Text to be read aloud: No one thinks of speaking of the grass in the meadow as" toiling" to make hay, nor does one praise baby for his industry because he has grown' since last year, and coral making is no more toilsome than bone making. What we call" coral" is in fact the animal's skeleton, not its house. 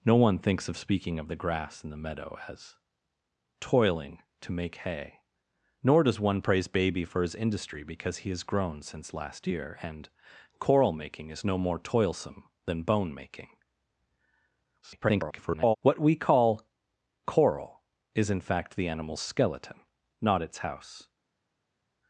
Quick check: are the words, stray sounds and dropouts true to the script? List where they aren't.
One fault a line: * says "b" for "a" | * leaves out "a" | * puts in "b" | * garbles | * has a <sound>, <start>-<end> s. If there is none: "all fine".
* garbles